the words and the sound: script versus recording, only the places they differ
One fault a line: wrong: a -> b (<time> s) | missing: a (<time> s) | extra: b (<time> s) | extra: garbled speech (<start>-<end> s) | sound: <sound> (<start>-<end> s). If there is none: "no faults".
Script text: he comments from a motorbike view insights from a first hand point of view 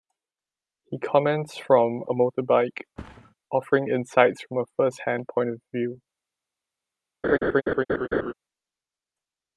sound: thud (3.0-3.3 s)
wrong: view -> offering (3.5 s)
sound: laugh (7.2-8.3 s)